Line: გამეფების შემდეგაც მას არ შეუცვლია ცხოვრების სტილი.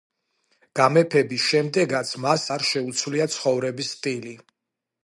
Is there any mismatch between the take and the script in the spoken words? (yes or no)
no